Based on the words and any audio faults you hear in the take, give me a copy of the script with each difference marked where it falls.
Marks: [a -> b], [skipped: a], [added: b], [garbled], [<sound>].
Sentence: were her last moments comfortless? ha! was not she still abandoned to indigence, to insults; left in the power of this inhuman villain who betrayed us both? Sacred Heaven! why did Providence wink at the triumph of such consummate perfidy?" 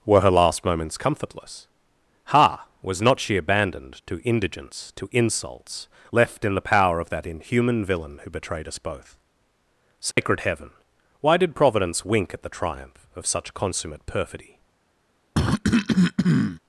were her last moments comfortless? ha! was not she [skipped: still] abandoned to indigence, to insults; left in the power of [this -> that] inhuman villain who betrayed us both? Sacred [dropout] Heaven! why did Providence wink at the triumph of such consummate perfidy?" [cough]